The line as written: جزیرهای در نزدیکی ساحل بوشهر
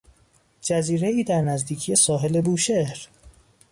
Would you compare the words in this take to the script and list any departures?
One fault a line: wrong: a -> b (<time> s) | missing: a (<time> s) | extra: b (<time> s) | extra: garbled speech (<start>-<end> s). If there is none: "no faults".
no faults